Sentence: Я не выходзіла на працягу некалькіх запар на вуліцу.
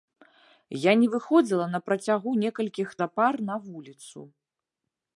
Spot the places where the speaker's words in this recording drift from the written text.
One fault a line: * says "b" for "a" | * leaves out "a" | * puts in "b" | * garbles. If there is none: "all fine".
all fine